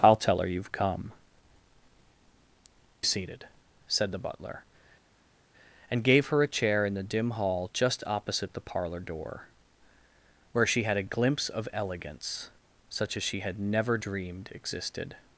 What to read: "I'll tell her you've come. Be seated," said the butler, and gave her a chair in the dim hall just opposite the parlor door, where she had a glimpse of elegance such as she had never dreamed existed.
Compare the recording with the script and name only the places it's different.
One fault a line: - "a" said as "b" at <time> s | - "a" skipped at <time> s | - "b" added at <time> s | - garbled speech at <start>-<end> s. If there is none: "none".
- "Be" skipped at 1.1 s